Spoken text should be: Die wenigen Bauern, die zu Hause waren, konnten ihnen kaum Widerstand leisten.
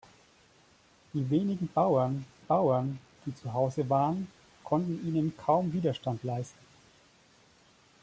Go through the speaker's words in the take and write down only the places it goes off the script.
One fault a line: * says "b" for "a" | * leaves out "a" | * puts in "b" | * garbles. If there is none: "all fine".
* puts in "Bauern"